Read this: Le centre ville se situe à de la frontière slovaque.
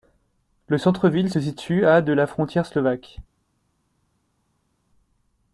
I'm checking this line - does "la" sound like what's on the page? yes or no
yes